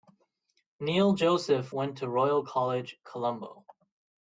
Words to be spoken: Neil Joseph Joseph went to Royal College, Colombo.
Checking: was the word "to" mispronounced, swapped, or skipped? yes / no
no